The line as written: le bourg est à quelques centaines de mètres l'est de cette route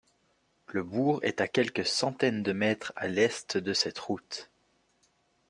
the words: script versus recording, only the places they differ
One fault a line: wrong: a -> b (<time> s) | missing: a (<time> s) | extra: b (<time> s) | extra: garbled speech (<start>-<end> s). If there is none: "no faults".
extra: à (3.0 s)